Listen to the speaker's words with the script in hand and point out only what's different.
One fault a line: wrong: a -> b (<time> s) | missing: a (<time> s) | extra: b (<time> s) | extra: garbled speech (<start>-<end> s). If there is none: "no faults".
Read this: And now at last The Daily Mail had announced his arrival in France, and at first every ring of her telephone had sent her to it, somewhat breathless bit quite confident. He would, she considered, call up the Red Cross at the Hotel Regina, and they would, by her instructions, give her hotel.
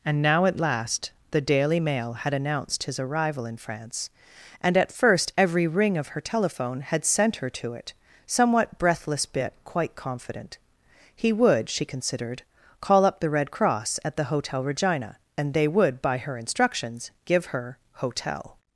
no faults